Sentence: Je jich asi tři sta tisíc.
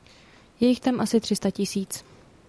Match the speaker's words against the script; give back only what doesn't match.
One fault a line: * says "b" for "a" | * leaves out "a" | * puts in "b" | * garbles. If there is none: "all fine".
* puts in "tam"